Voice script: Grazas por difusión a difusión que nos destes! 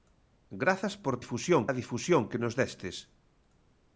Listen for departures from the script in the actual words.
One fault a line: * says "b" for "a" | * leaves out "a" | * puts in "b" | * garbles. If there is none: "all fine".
all fine